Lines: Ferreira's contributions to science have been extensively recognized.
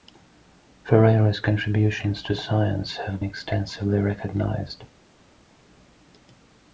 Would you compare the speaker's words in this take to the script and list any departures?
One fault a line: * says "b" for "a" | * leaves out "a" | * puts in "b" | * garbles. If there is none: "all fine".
* leaves out "been"